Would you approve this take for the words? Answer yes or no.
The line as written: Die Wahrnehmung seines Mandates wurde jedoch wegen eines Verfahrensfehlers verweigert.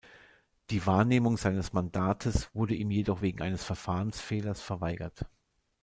no